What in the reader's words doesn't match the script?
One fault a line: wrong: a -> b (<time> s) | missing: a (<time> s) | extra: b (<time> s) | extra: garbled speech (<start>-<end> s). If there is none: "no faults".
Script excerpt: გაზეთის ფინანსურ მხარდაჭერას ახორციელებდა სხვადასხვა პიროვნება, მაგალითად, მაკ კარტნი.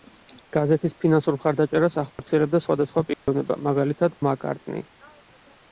no faults